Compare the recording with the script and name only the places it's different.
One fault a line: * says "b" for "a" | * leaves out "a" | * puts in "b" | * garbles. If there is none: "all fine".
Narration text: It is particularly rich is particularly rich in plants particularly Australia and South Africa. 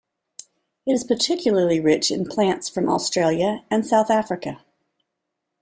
* leaves out "is particularly rich"
* says "from" for "particularly"